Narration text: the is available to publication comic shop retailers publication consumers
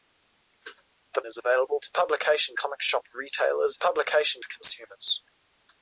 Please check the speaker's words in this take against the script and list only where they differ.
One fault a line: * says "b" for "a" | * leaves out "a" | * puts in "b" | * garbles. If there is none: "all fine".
all fine